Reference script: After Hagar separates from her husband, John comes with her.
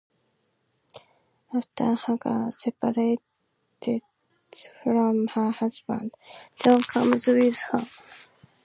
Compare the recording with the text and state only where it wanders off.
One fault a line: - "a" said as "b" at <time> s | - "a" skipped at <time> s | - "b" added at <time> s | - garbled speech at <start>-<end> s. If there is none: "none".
none